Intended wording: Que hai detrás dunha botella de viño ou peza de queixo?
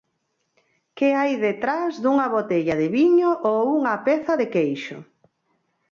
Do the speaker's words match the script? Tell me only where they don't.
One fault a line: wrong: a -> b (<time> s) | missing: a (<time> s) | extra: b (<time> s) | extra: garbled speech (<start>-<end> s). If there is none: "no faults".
extra: unha (3.8 s)